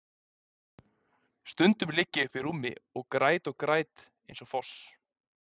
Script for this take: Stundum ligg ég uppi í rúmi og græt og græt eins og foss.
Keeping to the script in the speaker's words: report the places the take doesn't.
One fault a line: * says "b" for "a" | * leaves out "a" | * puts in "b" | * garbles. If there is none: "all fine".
all fine